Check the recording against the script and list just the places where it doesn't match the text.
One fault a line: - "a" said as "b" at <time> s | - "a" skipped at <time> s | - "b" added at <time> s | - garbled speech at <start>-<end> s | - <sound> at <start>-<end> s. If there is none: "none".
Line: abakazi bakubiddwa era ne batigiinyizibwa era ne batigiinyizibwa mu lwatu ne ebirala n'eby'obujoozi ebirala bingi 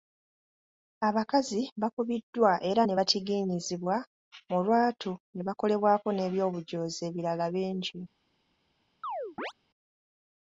- "era ne batigiinyizibwa" skipped at 4.0 s
- "ebirala" said as "bakolebwako" at 5.5 s
- chirp at 9.0-9.5 s